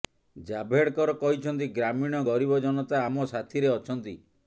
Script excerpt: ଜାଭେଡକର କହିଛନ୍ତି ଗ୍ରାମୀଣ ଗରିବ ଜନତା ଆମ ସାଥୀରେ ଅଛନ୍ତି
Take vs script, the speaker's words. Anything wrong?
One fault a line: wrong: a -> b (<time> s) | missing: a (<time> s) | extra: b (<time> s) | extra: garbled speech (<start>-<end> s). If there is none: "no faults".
no faults